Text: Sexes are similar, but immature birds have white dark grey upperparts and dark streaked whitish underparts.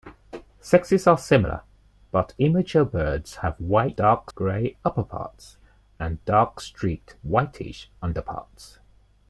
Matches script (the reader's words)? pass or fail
pass